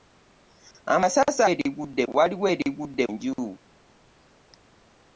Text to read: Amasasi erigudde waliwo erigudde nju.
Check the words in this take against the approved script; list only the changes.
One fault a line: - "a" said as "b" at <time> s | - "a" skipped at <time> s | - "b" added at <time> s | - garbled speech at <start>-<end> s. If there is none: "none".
none